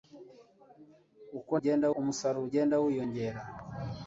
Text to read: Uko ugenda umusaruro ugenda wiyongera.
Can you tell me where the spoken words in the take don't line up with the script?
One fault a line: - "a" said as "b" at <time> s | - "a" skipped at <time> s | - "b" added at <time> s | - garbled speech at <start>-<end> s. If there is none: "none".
none